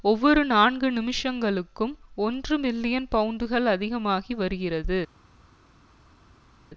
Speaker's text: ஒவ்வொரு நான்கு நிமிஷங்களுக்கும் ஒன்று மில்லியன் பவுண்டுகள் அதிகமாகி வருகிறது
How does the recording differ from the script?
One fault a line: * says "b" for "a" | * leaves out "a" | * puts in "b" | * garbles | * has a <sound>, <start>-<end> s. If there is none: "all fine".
all fine